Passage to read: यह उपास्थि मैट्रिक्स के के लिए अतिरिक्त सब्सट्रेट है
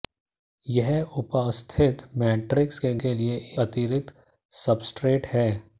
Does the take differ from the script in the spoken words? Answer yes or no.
no